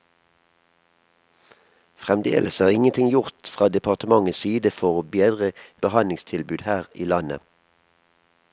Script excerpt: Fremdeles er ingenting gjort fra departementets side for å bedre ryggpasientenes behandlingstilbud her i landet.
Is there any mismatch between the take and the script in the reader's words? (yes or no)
yes